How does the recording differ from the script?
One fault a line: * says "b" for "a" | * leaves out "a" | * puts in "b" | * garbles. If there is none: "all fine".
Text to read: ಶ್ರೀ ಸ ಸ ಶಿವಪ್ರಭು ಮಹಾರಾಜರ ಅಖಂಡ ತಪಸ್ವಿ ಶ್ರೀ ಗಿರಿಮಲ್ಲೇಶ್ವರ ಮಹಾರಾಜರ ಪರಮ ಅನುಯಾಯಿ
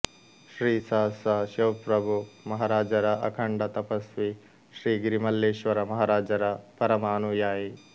all fine